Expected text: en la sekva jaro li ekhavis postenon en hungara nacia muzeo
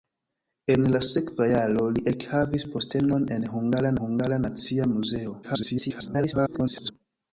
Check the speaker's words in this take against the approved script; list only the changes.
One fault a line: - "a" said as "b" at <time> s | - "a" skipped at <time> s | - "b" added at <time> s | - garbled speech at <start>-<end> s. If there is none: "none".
- "hungara" added at 4.0 s
- garbled speech at 5.4-6.9 s